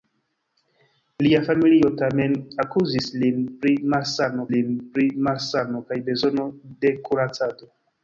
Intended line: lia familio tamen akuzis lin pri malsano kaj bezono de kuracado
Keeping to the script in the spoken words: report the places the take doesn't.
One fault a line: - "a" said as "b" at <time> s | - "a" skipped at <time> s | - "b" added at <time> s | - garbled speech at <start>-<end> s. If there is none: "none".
- "lin pri malsano" added at 4.6 s